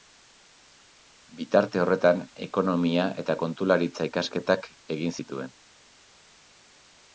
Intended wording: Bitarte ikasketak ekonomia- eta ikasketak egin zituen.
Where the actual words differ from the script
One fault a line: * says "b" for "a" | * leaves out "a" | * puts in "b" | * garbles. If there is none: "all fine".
* says "horretan" for "ikasketak"
* puts in "kontularitza"